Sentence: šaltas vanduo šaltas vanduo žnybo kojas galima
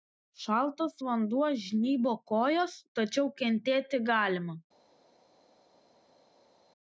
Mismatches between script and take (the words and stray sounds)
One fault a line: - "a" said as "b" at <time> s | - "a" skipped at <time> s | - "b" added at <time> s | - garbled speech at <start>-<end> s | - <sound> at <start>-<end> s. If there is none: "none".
- "šaltas vanduo žnybo kojas" said as "žnybo kojas tačiau kentėti" at 1.6 s